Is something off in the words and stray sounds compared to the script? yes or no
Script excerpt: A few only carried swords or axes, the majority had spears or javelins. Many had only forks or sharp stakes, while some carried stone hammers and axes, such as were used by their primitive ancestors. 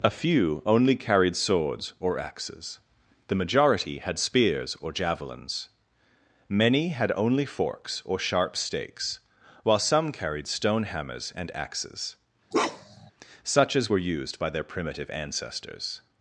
yes